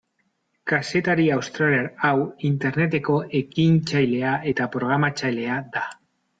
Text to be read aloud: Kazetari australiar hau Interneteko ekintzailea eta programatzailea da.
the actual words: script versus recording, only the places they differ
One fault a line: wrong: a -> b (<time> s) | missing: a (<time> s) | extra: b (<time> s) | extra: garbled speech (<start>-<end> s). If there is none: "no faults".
no faults